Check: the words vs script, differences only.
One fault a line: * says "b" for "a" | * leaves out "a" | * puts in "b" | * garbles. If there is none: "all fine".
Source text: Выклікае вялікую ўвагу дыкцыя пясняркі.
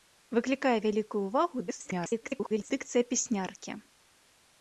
* garbles